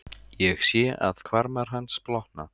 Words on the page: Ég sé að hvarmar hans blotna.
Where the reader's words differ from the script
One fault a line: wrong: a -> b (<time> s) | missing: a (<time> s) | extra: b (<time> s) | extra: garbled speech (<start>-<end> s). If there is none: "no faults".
no faults